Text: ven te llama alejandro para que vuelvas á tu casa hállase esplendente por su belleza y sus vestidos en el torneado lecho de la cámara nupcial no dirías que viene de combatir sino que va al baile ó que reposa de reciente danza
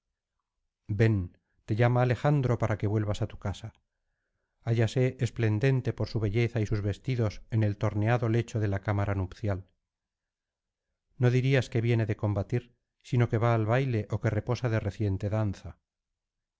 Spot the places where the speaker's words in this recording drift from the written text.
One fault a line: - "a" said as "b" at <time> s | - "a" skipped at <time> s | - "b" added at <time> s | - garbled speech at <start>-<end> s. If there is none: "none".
none